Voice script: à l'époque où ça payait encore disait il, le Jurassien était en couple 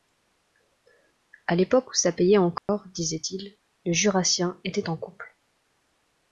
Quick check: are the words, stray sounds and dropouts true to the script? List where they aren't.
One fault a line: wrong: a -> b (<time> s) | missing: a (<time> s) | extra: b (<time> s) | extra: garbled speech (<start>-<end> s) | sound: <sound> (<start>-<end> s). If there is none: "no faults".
sound: dropout (2.6-2.7 s)